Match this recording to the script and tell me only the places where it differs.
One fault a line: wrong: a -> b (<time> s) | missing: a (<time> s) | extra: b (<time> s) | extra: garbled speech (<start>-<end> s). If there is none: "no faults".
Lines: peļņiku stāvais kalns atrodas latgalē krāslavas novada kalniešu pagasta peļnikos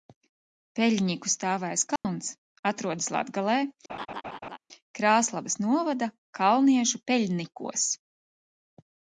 missing: pagasta (7.0 s)